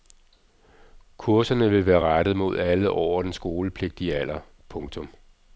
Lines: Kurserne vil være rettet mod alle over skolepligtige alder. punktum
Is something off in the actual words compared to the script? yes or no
yes